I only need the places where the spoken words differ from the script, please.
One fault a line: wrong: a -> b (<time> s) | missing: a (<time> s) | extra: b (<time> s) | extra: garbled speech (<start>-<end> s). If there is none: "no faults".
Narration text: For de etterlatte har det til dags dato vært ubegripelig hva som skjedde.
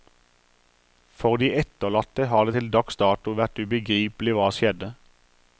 missing: som (4.5 s)